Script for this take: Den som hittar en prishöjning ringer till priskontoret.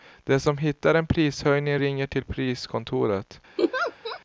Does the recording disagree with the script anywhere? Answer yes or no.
no